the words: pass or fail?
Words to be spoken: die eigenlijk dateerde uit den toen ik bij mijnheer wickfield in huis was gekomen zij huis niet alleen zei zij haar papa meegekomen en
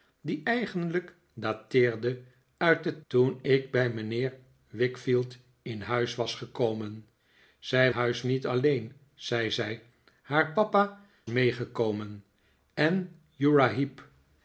pass